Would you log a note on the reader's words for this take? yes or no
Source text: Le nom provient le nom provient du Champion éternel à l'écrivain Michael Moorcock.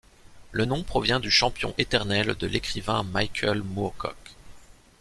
yes